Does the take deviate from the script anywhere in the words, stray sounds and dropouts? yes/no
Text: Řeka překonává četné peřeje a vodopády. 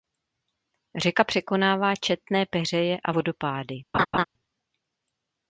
yes